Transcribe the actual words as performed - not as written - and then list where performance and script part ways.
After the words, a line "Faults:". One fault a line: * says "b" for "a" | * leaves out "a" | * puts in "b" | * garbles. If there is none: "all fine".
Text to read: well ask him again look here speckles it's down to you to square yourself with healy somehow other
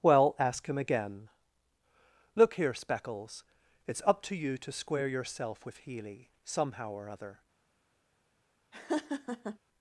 well ask him again look here speckles it's up to you to square yourself with healy somehow or other
Faults:
* says "up" for "down"
* puts in "or"